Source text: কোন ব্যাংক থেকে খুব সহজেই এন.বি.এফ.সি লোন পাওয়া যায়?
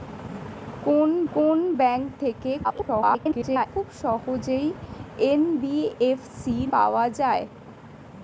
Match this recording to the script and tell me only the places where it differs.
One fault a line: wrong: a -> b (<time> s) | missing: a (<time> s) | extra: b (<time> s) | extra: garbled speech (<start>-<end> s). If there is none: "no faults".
extra: কোন (1.3 s)
extra: garbled speech (2.6-3.7 s)
missing: লোন (6.6 s)